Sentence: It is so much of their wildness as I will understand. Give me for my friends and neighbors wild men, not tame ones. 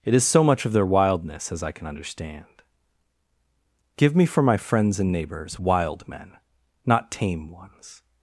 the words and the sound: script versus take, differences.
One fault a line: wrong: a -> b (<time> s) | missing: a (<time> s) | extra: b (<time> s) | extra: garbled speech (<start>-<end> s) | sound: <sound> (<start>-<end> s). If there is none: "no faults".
wrong: will -> can (1.7 s)